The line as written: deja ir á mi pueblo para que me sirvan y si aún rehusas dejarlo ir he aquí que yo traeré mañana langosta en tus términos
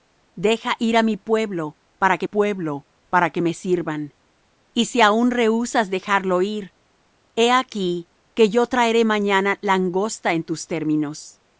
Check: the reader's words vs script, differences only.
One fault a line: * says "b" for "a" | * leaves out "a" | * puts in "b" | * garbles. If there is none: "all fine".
* puts in "pueblo para que"